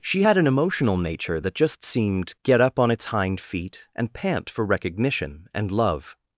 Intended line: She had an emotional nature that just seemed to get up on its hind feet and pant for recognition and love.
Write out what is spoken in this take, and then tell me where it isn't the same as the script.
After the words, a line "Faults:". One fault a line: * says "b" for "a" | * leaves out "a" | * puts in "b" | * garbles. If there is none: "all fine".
She had an emotional nature that just seemed get up on its hind feet and pant for recognition and love.
Faults:
* leaves out "to"